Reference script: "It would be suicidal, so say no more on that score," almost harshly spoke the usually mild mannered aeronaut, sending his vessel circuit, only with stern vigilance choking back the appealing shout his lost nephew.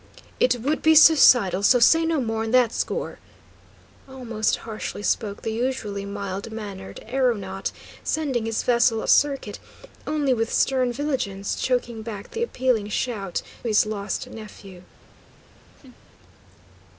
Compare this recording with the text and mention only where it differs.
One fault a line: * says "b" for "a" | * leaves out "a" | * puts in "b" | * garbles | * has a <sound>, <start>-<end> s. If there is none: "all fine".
* has a laugh, 15.8-16.0 s